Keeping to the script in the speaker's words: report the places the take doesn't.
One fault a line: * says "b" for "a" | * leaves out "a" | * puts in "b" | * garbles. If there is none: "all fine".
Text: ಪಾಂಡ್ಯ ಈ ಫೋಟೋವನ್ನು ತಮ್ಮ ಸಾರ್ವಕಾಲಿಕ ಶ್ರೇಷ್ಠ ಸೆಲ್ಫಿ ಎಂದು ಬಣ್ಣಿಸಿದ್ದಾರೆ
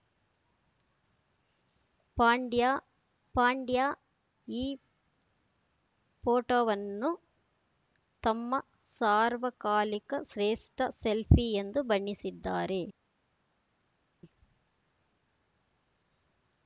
* puts in "ಪಾಂಡ್ಯ"